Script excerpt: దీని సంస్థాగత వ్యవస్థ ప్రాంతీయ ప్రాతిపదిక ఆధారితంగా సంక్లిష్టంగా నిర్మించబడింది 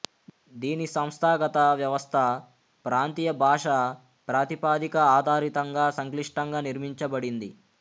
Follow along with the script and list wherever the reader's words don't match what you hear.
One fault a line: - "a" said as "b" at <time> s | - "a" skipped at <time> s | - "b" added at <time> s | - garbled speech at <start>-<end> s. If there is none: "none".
- "భాషా" added at 3.4 s